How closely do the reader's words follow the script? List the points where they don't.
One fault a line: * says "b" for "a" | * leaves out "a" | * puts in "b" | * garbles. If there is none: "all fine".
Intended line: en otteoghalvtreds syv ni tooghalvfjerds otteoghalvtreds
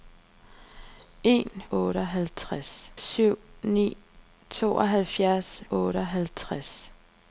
all fine